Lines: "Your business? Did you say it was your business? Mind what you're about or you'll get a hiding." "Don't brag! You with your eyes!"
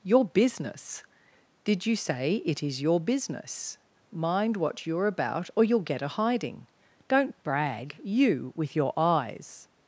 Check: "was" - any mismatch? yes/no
yes